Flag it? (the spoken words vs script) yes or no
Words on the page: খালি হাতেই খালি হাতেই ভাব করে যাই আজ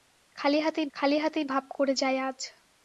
no